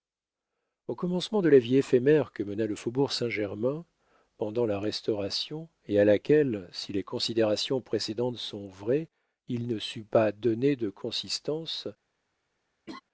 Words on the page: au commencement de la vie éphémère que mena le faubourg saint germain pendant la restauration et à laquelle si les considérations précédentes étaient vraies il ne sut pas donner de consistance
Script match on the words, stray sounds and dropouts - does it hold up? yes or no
no